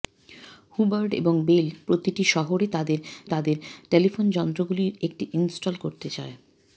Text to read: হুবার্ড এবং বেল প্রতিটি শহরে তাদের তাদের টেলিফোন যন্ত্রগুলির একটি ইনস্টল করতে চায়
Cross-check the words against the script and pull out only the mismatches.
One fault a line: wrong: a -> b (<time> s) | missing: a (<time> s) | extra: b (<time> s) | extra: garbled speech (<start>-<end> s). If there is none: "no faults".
no faults